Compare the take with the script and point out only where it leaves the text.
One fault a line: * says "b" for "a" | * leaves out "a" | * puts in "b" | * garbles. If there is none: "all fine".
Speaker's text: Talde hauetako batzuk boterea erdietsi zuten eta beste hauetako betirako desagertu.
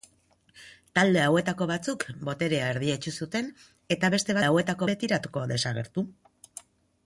all fine